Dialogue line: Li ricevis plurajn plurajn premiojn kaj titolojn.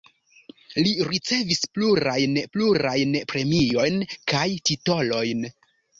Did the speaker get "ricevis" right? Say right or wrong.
right